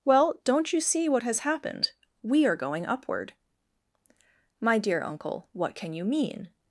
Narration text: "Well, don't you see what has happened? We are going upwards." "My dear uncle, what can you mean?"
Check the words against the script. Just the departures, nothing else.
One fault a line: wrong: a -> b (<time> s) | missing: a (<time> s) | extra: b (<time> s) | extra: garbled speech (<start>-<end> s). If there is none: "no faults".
wrong: upwards -> upward (2.9 s)